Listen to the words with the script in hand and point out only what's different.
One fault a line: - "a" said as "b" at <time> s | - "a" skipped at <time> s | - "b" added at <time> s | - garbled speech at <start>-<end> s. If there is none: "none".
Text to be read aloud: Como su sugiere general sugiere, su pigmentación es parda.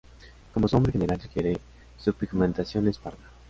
- "sugiere" said as "nombre" at 0.8 s